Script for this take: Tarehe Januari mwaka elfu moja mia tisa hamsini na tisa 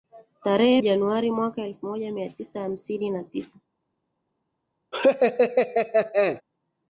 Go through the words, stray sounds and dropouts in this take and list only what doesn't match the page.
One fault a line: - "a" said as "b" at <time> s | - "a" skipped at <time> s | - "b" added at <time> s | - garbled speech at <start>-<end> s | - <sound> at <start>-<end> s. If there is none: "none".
- laugh at 4.9-6.4 s